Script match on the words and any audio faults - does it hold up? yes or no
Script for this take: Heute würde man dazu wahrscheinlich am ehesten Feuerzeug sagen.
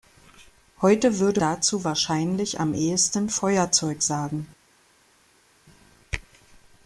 no